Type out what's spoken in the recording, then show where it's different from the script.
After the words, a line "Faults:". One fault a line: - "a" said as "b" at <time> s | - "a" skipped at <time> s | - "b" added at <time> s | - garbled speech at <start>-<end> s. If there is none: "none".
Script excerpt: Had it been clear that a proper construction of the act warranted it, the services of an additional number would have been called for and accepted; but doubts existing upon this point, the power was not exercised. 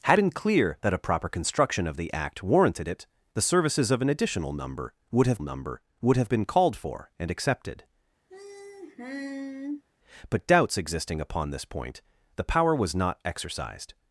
Had been clear that a proper construction of the act warranted it, the services of an additional number would have number would have been called for and accepted; but doubts existing upon this point, the power was not exercised.
Faults:
- "it" skipped at 0.2 s
- "number would have" added at 5.4 s